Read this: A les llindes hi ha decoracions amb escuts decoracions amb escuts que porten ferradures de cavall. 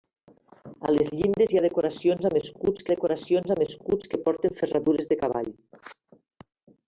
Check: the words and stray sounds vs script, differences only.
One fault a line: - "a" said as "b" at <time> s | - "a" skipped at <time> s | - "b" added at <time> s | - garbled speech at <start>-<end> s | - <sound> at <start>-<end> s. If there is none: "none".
none